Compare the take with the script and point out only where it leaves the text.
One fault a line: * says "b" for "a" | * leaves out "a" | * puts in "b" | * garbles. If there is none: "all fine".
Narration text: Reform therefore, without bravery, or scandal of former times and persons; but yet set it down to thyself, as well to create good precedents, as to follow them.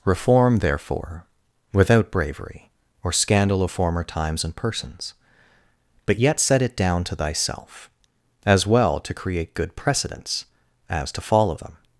all fine